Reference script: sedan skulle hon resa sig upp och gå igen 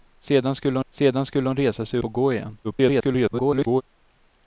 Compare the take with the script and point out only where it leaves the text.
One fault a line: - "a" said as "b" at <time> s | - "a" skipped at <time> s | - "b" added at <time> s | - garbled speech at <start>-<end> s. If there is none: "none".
- "sedan skulle" added at 0.9 s
- "upp" skipped at 2.0 s
- garbled speech at 2.6-3.8 s